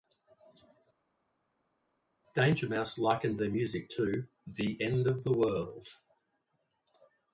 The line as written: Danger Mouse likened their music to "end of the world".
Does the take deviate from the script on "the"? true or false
false